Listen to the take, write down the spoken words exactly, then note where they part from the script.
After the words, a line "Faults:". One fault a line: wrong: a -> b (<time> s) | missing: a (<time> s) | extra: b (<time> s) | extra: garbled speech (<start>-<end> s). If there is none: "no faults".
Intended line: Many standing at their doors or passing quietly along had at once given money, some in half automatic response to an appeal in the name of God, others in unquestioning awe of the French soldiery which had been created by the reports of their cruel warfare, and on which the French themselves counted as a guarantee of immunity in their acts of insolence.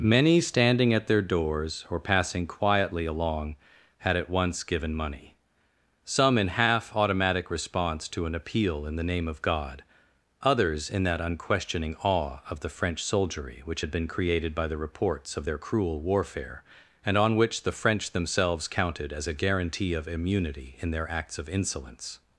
Many standing at their doors or passing quietly along had at once given money, some in half automatic response to an appeal in the name of God, others in that unquestioning awe of the French soldiery which had been created by the reports of their cruel warfare, and on which the French themselves counted as a guarantee of immunity in their acts of insolence.
Faults:
extra: that (11.0 s)